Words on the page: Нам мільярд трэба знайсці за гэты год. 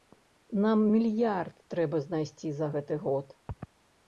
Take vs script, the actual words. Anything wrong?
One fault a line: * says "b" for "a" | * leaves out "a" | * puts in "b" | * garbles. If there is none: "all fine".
all fine